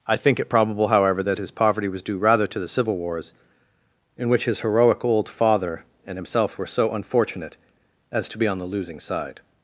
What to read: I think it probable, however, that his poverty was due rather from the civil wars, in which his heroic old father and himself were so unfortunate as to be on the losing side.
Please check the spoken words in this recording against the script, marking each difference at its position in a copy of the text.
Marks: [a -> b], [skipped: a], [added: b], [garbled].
I think it probable, however, that his poverty was due rather [from -> to] the civil wars, in which his heroic old father and himself were so unfortunate as to be on the losing side.